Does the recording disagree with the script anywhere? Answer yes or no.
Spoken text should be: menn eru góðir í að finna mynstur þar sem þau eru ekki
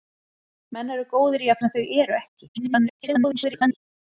yes